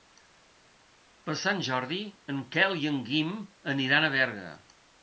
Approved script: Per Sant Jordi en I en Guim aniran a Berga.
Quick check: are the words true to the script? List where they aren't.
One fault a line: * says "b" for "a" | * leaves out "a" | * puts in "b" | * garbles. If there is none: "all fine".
* puts in "Quel"